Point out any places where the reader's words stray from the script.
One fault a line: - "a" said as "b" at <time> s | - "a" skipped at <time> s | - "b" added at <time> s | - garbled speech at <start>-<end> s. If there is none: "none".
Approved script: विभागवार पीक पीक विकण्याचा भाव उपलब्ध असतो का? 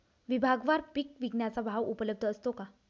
- "पीक" skipped at 1.1 s